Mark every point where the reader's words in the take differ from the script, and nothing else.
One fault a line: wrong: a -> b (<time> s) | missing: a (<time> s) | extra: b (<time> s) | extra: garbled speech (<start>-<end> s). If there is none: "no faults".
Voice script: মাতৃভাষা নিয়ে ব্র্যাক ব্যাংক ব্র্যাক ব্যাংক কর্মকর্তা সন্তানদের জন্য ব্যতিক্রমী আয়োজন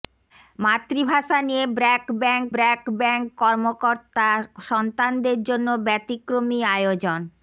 no faults